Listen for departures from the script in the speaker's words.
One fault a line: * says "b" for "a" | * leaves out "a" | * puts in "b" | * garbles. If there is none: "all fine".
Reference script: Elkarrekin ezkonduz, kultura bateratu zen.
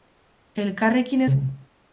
* leaves out "ezkonduz kultura bateratu"